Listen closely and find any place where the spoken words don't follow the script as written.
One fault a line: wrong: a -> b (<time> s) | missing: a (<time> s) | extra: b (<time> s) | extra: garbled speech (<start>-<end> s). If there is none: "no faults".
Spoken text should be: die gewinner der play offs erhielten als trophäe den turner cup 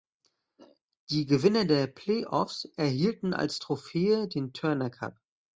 no faults